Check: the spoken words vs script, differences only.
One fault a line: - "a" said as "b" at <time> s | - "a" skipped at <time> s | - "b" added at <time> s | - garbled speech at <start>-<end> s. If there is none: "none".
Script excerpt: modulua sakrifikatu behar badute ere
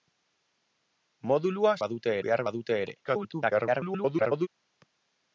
- "sakrifikatu" said as "badute" at 1.9 s
- garbled speech at 3.0-4.5 s